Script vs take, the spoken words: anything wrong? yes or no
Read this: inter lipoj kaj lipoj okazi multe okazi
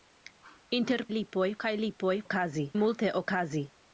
no